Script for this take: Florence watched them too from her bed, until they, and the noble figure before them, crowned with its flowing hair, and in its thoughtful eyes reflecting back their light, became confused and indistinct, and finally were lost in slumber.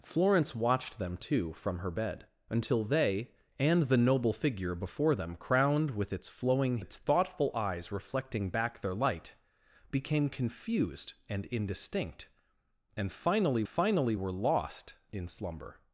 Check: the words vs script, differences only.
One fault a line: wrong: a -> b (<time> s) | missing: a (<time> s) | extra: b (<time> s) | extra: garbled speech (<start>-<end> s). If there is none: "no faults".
missing: hair and in (6.8 s)
extra: finally (13.6 s)